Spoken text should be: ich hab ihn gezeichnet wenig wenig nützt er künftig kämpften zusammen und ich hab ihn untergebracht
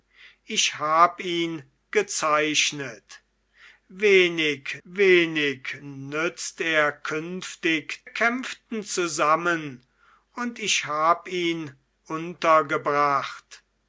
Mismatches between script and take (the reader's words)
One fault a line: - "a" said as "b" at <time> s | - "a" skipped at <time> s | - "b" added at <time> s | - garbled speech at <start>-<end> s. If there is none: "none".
none